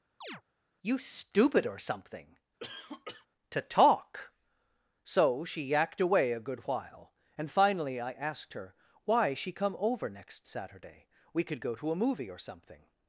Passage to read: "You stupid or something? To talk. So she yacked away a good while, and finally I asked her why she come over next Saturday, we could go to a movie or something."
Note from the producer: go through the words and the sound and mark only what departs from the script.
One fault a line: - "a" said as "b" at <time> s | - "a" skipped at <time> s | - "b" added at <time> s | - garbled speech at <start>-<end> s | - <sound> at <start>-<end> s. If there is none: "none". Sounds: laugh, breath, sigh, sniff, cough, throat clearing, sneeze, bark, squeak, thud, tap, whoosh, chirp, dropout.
- chirp at 0.2-0.4 s
- cough at 2.6-3.3 s